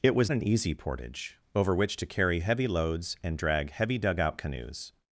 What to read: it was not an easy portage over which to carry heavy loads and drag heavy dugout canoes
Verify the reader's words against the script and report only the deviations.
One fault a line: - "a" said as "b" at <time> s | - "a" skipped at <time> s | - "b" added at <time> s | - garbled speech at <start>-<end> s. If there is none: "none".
- "not" skipped at 0.3 s